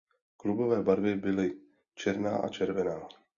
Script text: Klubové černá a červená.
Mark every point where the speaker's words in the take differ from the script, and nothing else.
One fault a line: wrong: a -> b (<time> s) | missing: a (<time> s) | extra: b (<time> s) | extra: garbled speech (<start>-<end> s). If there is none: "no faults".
extra: barvy byly (0.8 s)